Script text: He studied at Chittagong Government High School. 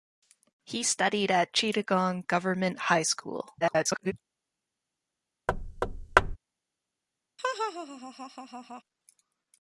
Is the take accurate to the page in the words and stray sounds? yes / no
no